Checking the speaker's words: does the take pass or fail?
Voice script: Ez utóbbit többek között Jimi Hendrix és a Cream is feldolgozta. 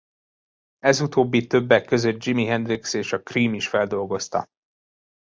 pass